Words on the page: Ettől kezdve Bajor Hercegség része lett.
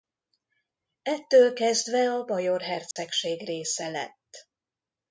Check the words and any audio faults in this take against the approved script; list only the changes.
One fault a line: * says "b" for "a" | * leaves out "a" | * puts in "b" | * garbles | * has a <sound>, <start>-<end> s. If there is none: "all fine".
* puts in "a"
* has a dropout, 2.9-3.0 s